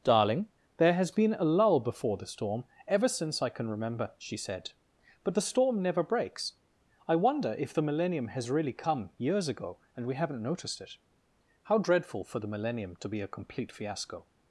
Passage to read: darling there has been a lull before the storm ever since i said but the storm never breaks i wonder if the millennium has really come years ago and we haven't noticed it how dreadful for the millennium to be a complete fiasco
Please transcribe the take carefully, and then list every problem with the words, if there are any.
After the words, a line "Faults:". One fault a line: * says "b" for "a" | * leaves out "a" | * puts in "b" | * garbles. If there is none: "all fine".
darling there has been a lull before the storm ever since i can remember she said but the storm never breaks i wonder if the millennium has really come years ago and we haven't noticed it how dreadful for the millennium to be a complete fiasco
Faults:
* puts in "can remember she"